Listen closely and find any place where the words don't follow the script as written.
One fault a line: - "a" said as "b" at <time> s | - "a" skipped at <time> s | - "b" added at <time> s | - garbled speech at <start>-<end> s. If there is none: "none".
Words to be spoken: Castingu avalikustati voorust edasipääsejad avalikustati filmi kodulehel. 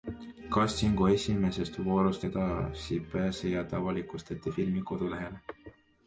- "avalikustati" said as "esimesest" at 1.1 s